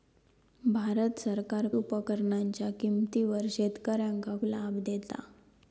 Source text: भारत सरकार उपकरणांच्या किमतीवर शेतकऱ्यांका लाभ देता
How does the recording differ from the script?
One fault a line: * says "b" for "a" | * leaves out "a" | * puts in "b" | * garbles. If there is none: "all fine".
all fine